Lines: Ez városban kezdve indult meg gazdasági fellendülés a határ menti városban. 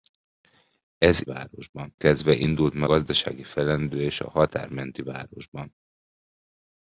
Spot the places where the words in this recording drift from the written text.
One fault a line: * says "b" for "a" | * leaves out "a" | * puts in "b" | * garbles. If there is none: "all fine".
all fine